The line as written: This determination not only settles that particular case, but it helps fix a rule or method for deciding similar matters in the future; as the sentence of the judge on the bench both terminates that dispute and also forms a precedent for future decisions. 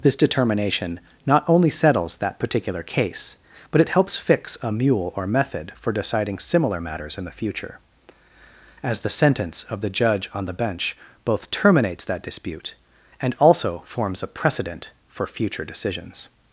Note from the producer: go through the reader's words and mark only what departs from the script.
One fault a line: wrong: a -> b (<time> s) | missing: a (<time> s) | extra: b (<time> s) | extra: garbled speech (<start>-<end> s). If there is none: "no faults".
wrong: rule -> mule (4.7 s)